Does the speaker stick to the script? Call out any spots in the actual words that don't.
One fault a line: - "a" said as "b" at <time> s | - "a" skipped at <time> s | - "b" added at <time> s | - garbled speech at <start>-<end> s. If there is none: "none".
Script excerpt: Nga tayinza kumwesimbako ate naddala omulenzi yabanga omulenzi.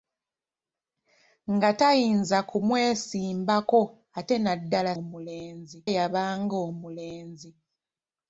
none